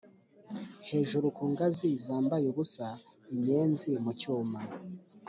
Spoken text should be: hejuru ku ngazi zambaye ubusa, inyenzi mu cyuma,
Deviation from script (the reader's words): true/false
false